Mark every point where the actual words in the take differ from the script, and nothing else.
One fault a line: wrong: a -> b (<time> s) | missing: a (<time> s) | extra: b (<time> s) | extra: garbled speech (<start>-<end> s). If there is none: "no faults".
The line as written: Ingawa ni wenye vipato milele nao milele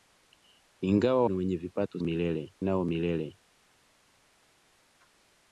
no faults